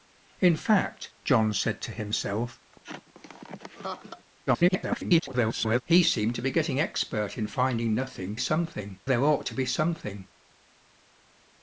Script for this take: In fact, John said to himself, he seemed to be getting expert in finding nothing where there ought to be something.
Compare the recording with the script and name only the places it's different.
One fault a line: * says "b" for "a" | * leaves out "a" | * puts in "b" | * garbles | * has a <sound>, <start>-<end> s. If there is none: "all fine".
* has a laugh, 2.7-4.3 s
* garbles
* says "something" for "where"